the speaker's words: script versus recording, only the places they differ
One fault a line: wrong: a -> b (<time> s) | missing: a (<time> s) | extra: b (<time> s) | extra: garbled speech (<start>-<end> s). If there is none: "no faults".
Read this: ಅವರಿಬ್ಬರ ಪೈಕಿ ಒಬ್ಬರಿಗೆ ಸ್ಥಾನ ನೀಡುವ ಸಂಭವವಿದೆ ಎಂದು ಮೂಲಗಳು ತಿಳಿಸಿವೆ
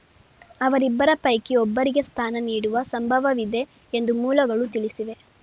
no faults